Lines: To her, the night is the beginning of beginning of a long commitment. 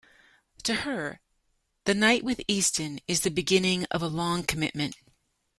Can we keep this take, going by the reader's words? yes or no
no